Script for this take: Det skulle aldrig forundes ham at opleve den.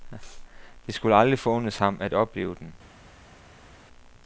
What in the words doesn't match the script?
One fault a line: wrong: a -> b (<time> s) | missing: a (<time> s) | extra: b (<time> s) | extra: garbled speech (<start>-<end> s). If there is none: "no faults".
no faults